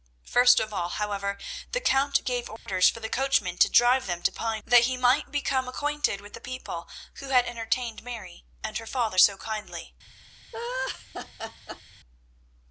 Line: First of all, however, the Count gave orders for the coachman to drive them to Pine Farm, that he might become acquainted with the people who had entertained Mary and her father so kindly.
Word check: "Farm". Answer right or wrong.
wrong